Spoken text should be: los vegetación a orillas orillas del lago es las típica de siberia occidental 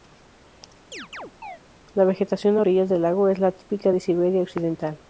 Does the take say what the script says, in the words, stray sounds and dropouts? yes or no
no